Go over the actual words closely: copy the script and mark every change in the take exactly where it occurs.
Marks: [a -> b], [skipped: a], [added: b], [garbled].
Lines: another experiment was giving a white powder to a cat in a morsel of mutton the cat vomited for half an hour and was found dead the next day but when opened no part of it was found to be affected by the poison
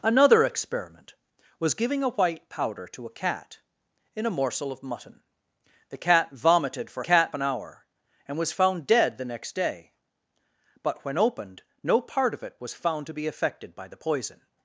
another experiment was giving a white powder to a cat in a morsel of mutton the cat vomited for [half -> cat] an hour and was found dead the next day but when opened no part of it was found to be affected by the poison